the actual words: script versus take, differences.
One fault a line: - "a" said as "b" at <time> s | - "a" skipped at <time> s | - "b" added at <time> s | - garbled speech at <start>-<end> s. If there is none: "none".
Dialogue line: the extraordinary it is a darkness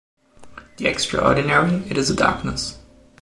none